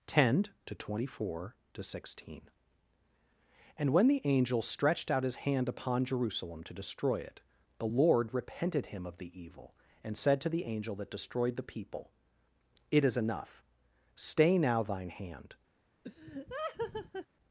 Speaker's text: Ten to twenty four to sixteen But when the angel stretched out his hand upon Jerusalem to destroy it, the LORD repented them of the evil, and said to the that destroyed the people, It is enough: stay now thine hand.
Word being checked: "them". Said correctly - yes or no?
no